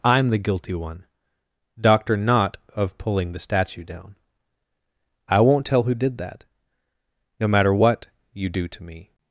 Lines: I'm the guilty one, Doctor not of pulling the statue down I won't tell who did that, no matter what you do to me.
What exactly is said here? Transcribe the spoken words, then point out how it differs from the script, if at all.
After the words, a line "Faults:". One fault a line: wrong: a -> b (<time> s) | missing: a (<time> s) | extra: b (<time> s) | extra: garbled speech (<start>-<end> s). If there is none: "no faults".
I'm the guilty one, Doctor not of pulling the statue down I won't tell who did that, no matter what you do to me.
Faults:
no faults